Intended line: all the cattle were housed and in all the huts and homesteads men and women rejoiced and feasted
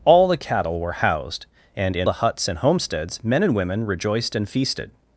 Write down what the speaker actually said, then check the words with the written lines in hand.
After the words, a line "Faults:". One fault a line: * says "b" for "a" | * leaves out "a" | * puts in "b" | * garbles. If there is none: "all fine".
all the cattle were housed and in the huts and homesteads men and women rejoiced and feasted
Faults:
* leaves out "all"